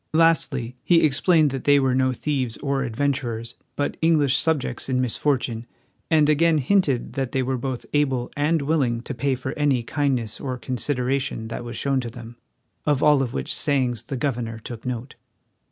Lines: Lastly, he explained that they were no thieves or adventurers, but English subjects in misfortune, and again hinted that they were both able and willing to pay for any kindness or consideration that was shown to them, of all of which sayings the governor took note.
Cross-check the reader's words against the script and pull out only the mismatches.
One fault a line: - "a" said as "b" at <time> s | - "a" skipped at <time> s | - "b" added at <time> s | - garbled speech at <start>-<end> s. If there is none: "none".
none